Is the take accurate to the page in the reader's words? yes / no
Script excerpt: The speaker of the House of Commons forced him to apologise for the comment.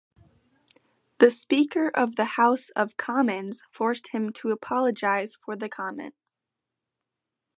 yes